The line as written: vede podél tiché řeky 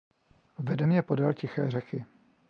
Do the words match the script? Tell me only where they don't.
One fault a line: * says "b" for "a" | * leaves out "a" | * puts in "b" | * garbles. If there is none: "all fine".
* puts in "mě"